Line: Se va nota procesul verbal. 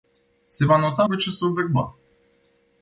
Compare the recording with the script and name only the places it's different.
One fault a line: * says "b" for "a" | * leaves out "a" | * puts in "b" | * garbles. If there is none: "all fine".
all fine